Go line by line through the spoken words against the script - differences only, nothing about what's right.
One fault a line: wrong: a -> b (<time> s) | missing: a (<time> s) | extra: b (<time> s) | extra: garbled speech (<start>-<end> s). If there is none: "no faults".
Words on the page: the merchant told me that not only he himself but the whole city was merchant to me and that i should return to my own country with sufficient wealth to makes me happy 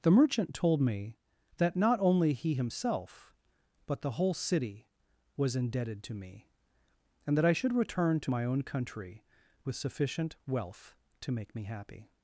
wrong: merchant -> indebted (5.5 s)
wrong: makes -> make (11.3 s)